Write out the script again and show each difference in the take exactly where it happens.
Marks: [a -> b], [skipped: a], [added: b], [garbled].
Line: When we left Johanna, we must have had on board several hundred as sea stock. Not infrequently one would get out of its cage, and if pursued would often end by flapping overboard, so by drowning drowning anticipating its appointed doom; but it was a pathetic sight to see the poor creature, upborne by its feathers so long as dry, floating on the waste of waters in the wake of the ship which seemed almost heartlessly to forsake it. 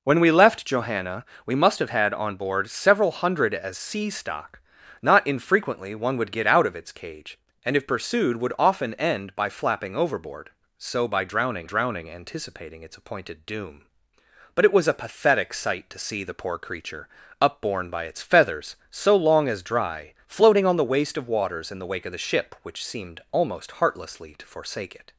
When we left Johanna, we must have had on board several hundred as sea stock. Not infrequently one would get out of its cage, and if pursued would often end by flapping overboard, so by drowning drowning anticipating its appointed doom; but it was a pathetic sight to see the poor creature, upborne by its feathers so long as dry, floating on the waste of waters in the wake of the ship which seemed almost heartlessly to forsake it.